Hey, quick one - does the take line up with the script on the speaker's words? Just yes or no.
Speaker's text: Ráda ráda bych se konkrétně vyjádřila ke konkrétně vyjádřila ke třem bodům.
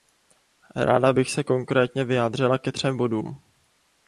no